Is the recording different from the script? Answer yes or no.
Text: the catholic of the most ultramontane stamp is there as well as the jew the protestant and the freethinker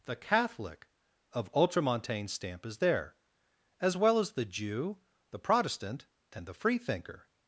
yes